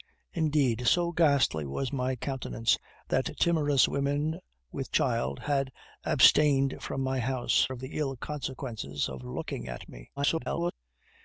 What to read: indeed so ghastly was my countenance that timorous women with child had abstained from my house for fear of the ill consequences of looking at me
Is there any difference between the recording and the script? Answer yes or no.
yes